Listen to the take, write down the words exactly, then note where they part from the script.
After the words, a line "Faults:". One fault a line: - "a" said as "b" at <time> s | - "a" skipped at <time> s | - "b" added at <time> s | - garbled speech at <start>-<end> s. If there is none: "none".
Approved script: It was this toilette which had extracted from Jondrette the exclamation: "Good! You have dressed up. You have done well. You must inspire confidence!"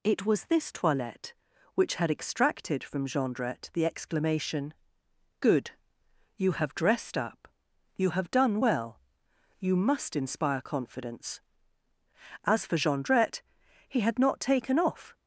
It was this toilette which had extracted from Jondrette the exclamation: "Good! You have dressed up. You have done well. You must inspire confidence!" As for Jondrette, he had not taken off
Faults:
- "As for Jondrette he had not taken off" added at 12.4 s